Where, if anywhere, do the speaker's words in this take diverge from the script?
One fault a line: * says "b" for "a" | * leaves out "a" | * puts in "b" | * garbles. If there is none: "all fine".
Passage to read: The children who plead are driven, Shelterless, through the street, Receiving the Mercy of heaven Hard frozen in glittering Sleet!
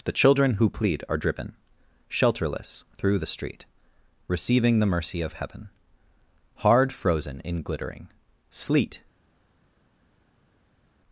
all fine